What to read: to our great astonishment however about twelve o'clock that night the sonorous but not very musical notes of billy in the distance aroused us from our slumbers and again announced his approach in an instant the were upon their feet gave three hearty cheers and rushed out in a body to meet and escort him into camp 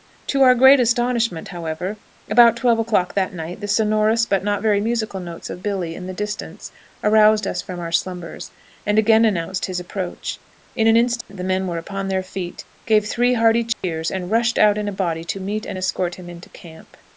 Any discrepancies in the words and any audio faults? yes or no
yes